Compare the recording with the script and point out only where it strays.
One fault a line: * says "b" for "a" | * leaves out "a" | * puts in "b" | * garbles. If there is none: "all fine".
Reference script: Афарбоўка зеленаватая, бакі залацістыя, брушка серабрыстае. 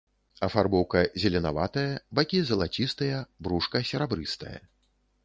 all fine